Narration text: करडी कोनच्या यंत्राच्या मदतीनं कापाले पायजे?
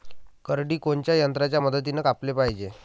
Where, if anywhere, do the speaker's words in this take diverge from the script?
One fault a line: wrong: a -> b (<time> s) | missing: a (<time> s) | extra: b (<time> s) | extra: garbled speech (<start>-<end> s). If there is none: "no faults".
no faults